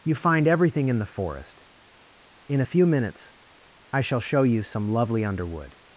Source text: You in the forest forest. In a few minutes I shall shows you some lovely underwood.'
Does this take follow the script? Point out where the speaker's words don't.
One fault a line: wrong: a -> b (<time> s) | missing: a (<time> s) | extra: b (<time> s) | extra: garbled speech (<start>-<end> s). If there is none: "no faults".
extra: find everything (0.1 s)
missing: forest (1.6 s)
wrong: shows -> show (4.2 s)